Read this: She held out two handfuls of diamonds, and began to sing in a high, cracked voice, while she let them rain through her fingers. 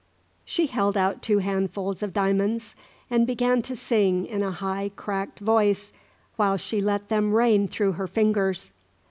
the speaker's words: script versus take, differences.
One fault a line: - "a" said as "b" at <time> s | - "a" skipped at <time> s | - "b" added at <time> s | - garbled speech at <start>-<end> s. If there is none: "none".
none